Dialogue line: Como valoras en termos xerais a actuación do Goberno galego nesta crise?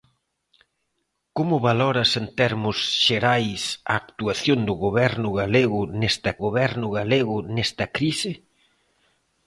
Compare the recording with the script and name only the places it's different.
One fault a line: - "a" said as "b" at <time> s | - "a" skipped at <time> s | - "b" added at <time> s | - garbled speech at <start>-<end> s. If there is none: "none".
- "Goberno galego nesta" added at 6.5 s